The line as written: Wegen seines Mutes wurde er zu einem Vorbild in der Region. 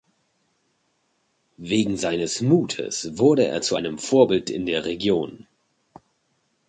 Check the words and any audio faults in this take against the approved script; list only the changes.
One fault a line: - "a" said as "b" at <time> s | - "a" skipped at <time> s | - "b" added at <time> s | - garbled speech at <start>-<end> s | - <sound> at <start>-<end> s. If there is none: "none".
none